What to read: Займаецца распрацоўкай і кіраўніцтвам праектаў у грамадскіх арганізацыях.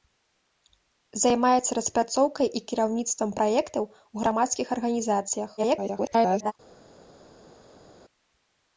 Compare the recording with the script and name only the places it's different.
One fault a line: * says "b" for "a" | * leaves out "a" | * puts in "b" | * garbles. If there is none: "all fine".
* garbles